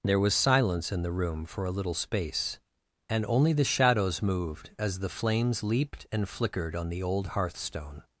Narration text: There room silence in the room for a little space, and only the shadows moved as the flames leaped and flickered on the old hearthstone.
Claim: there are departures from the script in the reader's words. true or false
true